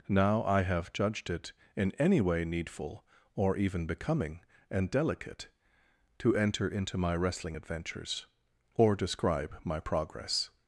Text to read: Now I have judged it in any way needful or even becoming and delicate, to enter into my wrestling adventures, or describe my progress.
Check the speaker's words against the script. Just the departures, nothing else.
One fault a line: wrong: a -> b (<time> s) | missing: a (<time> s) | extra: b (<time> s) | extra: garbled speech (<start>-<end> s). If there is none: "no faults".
no faults